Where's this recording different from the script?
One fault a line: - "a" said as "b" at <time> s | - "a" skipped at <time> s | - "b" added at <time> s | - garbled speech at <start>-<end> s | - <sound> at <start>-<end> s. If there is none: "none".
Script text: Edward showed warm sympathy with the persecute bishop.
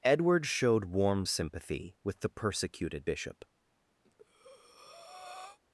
- "persecute" said as "persecuted" at 2.3 s
- breath at 4.0-5.6 s